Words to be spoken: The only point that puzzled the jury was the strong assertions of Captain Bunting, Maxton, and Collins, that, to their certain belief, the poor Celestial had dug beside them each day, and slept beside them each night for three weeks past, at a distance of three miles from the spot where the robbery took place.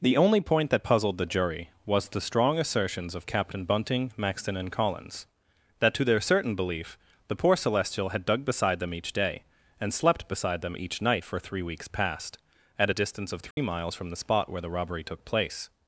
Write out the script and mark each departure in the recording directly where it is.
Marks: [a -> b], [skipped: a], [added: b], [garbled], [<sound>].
The only point that puzzled the jury was the strong assertions of Captain Bunting, Maxton, and Collins, that, to their certain belief, the poor Celestial had dug beside them each day, and slept beside them each night for three weeks past, at a distance of three [dropout] miles from the spot where the robbery took place.